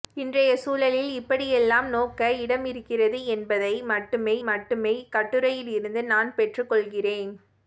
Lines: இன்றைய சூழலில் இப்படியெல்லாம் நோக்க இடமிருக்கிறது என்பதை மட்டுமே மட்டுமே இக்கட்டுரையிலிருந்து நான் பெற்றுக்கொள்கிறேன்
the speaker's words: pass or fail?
pass